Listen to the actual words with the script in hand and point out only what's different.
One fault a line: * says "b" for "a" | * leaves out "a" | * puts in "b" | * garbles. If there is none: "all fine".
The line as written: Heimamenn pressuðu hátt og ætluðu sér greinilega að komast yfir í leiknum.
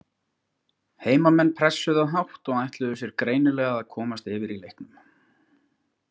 all fine